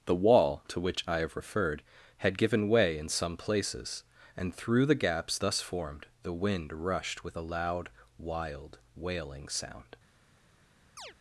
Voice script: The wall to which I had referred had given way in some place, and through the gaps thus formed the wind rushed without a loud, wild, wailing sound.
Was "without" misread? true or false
true